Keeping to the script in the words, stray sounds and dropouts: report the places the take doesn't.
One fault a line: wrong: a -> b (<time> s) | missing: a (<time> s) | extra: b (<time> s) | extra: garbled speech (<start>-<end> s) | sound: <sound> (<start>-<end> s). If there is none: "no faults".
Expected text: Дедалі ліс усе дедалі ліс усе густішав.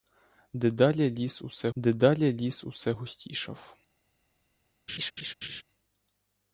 sound: laugh (4.9-5.6 s)